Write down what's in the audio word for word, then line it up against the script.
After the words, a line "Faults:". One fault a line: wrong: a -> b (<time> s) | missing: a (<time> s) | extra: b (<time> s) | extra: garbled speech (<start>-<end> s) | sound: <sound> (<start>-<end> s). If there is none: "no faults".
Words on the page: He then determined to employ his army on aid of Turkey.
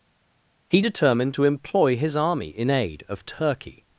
He determined to employ his army in aid of Turkey.
Faults:
missing: then (0.8 s)
wrong: on -> in (2.5 s)